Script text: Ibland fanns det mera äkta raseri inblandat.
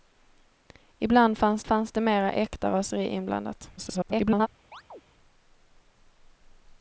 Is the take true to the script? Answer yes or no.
no